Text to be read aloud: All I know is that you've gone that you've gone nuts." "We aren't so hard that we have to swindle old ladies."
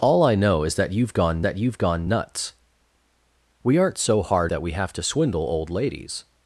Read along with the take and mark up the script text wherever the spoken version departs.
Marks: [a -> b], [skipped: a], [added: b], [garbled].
All I know is that you've gone that you've gone nuts." "We aren't so hard that we have to swindle old ladies."